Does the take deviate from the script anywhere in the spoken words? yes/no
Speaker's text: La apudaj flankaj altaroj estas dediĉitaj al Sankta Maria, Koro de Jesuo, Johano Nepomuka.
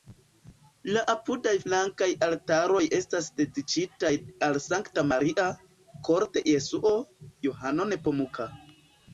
no